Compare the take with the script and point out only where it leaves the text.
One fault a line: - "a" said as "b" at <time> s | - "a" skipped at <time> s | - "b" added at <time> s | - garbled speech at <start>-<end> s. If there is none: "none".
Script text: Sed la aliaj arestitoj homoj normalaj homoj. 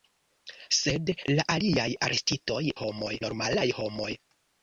none